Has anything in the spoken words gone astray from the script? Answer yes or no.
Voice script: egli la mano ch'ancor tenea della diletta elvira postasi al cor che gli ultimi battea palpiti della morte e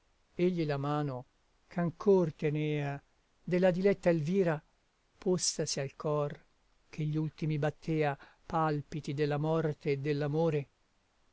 no